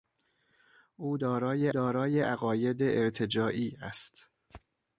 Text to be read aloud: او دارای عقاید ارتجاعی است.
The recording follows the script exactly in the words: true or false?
false